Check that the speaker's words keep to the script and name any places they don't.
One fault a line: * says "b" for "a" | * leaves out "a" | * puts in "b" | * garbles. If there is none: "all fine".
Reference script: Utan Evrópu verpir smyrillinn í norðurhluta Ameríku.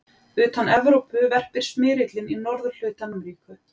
all fine